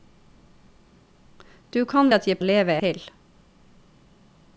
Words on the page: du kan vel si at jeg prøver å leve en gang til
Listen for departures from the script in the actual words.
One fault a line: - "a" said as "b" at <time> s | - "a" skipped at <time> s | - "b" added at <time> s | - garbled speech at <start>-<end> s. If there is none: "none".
- "vel si" skipped at 2.1 s
- "prøver" skipped at 2.4 s
- "en gang" skipped at 2.7 s